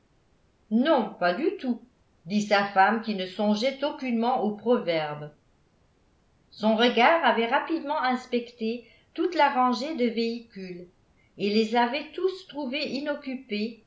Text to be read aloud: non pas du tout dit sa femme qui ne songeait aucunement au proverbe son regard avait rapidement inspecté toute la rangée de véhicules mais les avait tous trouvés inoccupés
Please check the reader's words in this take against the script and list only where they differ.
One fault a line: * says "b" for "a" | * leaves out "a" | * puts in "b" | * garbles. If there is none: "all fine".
* says "et" for "mais"